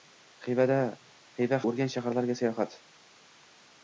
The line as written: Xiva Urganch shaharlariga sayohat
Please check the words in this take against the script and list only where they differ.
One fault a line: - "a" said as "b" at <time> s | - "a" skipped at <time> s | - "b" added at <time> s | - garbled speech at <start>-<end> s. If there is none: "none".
none